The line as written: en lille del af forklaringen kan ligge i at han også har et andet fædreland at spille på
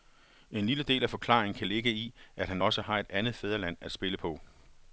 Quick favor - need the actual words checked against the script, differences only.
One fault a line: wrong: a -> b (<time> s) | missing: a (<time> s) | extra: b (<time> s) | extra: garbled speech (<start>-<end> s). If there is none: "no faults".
no faults